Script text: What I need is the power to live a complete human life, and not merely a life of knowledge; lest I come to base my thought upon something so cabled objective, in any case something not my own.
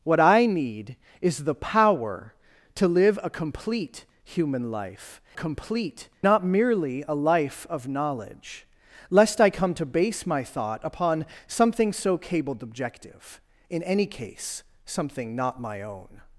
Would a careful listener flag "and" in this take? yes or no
yes